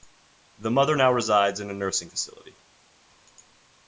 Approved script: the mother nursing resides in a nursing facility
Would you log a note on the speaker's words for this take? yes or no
yes